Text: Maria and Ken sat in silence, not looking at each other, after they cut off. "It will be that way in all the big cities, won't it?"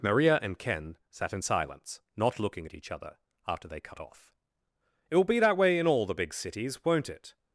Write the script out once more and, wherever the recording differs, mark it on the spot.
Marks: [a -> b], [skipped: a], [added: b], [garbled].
Maria and Ken sat in silence, not looking at each other, after they cut off. "It will be that way in all the big cities, won't it?"